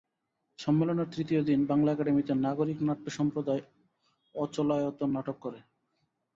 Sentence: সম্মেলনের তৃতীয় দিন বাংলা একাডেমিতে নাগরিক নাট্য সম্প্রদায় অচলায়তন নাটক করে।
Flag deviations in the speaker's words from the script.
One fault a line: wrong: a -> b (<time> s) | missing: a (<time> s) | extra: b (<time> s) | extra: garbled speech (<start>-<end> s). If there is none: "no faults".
no faults